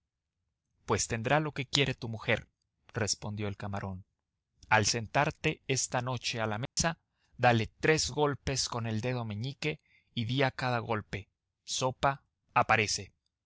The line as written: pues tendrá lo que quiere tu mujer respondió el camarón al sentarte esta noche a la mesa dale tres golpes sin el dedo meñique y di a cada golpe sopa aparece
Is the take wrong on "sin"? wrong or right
wrong